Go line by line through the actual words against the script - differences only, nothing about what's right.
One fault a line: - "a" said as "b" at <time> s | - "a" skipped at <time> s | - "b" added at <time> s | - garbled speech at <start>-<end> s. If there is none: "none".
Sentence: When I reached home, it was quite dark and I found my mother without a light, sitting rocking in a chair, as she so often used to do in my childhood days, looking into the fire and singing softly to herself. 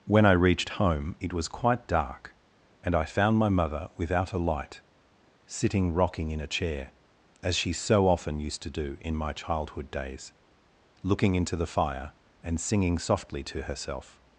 none